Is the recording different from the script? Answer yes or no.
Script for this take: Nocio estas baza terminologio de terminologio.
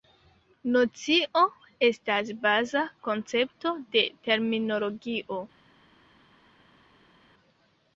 yes